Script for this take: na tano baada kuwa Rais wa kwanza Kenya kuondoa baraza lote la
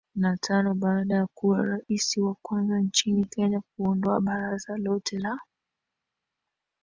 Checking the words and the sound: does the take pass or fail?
fail